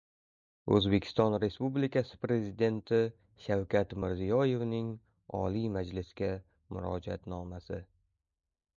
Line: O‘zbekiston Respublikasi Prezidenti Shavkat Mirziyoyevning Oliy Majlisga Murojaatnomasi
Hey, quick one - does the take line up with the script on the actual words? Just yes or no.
yes